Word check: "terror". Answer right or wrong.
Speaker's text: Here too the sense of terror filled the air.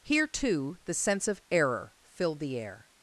wrong